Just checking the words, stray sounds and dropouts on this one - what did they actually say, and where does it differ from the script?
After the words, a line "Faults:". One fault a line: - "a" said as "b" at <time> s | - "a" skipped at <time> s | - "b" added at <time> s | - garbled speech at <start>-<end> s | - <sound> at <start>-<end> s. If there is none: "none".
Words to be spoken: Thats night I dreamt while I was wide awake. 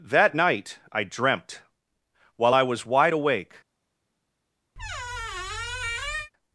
That night I dreamt while I was wide awake.
Faults:
- "Thats" said as "That" at 0.0 s
- squeak at 4.8-6.3 s